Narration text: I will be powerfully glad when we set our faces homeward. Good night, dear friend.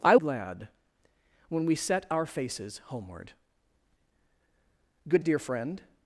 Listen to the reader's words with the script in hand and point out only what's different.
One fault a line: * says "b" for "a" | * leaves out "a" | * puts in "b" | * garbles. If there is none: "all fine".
* leaves out "will be powerfully"
* leaves out "night"